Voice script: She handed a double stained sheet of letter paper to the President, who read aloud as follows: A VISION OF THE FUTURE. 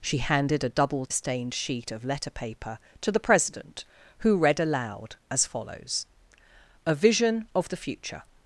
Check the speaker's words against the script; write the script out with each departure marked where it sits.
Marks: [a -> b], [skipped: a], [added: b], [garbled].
She handed a double stained sheet of letter paper to the President, who read aloud as follows: A VISION OF THE FUTURE.